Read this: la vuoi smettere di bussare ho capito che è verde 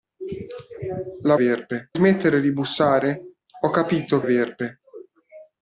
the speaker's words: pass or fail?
fail